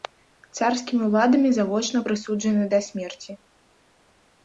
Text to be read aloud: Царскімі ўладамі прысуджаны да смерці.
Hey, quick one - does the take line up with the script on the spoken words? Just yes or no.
no